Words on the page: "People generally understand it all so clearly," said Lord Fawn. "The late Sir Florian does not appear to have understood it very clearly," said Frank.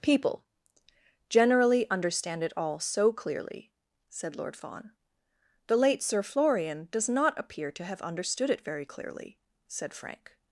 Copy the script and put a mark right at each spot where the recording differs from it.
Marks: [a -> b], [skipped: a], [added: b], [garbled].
"People generally understand it all so clearly," said Lord Fawn. "The late Sir Florian does not appear to have understood it very clearly," said Frank.